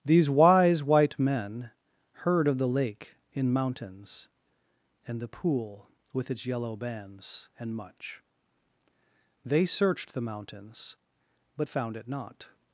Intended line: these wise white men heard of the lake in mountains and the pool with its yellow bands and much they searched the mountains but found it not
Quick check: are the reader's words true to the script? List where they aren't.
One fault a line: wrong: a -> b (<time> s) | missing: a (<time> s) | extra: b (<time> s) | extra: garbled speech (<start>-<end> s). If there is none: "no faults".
no faults